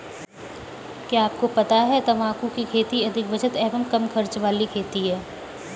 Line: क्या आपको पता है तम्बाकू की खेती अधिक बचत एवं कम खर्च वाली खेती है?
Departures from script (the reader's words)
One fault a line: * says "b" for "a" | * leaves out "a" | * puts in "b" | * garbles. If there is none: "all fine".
all fine